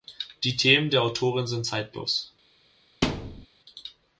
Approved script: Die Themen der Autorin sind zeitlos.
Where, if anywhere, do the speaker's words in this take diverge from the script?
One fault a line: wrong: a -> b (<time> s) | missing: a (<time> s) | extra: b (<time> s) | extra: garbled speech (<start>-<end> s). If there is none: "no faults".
no faults